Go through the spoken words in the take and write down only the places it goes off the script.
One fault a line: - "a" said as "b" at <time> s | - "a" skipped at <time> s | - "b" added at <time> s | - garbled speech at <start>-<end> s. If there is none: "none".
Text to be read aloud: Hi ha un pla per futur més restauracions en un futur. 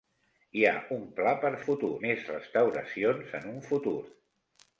none